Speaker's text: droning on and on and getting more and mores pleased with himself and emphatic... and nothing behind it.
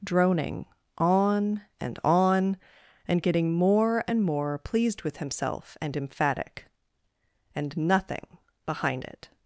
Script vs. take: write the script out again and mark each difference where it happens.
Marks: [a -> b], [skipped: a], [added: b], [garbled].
droning on and on and getting more and [mores -> more] pleased with himself and emphatic... and nothing behind it.